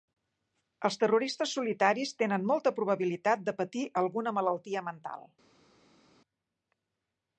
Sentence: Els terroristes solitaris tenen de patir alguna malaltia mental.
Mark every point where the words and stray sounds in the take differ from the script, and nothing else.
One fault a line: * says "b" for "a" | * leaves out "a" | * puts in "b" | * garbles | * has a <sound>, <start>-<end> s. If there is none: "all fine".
* puts in "molta probabilitat"